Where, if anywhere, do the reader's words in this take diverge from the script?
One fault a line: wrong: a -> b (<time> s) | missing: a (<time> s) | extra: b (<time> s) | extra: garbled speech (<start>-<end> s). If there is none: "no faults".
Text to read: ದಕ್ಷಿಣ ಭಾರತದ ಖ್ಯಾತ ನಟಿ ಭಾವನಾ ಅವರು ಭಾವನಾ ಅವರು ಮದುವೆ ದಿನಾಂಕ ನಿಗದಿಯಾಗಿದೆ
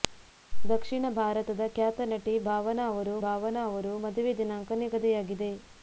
no faults